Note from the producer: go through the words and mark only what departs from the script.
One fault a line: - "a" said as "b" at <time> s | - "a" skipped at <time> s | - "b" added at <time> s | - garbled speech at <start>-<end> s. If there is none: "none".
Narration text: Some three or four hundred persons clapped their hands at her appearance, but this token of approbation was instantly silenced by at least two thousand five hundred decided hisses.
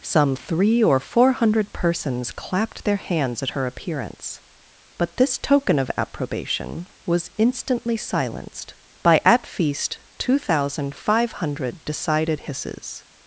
- "least" said as "feast" at 9.5 s